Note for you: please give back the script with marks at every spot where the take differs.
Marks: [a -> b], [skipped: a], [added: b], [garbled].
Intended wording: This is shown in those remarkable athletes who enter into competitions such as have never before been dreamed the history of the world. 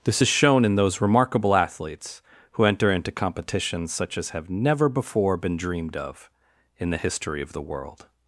This is shown in those remarkable athletes who enter into competitions such as have never before been dreamed [added: of in] the history of the world.